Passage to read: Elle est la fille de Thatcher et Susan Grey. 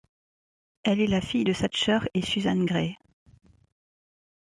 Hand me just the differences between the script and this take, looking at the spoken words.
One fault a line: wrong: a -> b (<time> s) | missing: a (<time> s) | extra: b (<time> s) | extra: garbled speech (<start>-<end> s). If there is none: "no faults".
no faults